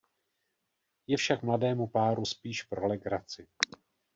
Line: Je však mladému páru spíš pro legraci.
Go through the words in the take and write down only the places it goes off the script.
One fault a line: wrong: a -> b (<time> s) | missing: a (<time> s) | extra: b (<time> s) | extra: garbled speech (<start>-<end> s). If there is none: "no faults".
no faults